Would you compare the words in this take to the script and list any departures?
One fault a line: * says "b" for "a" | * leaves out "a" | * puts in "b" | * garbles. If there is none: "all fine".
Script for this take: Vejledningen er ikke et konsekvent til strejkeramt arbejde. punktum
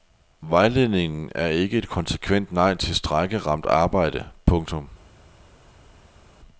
* puts in "nej"